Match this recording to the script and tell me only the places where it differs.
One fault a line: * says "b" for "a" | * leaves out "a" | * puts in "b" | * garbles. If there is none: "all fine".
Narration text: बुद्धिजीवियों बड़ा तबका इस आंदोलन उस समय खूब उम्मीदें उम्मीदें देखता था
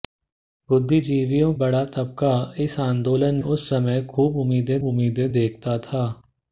all fine